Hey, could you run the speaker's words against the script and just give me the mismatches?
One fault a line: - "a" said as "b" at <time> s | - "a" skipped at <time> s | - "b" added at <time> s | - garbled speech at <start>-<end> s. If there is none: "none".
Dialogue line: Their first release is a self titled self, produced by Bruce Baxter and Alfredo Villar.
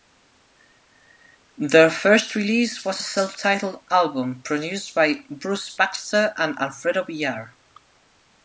- "is" said as "was" at 2.8 s
- "self" said as "album" at 3.9 s